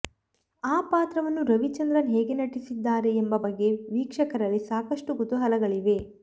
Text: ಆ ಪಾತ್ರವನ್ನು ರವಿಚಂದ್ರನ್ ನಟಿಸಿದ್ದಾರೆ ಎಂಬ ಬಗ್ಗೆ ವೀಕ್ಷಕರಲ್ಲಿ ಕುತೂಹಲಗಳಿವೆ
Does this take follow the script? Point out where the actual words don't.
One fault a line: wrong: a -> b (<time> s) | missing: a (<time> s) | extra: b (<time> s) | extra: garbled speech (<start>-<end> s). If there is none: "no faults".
extra: ಹೇಗೆ (2.1 s)
extra: ಸಾಕಷ್ಟು (4.7 s)